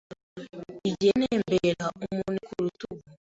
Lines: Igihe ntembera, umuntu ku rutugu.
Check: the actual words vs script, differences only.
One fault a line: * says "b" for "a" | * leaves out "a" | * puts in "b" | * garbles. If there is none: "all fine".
all fine